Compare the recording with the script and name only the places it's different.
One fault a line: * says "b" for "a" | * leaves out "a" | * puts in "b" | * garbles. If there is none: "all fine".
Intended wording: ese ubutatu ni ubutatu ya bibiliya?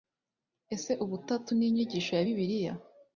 * says "inyigisho" for "ubutatu"